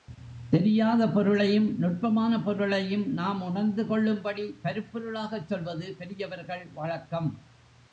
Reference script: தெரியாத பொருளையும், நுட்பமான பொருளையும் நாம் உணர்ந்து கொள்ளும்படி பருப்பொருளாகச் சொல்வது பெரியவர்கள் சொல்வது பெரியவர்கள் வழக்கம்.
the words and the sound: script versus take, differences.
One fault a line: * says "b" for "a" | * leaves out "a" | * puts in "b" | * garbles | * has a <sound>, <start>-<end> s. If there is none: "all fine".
* leaves out "சொல்வது பெரியவர்கள்"